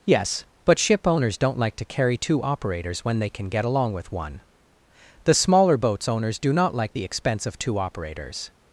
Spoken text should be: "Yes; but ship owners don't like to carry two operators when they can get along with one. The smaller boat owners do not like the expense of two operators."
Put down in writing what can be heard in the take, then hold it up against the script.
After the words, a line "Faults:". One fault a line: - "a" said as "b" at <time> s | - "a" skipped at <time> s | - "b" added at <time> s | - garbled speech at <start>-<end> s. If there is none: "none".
"Yes; but ship owners don't like to carry two operators when they can get along with one. The smaller boats owners do not like the expense of two operators."
Faults:
- "boat" said as "boats" at 5.8 s